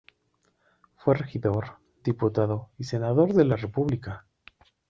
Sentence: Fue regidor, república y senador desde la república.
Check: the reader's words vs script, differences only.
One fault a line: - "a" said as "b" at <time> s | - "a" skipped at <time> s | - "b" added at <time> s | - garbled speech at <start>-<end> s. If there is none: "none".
- "república" said as "diputado" at 2.0 s
- "desde" said as "de" at 3.4 s